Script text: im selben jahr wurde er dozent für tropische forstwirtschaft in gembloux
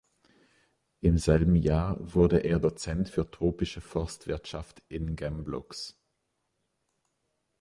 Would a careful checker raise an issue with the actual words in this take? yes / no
no